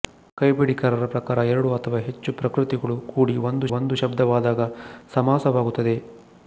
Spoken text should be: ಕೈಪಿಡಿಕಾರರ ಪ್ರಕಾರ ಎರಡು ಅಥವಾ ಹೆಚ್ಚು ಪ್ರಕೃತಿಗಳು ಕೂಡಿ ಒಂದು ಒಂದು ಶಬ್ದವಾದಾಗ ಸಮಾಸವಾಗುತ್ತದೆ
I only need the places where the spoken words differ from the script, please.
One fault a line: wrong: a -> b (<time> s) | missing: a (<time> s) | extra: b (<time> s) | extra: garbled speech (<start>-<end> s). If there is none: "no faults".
no faults